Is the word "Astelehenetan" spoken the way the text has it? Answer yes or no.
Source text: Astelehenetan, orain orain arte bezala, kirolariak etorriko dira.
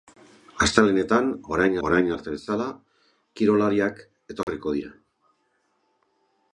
yes